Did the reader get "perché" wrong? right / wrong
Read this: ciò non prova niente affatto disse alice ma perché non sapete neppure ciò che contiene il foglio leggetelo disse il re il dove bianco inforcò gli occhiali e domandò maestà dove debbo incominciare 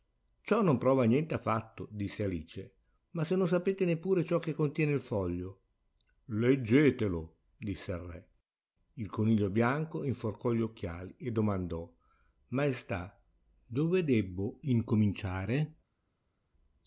wrong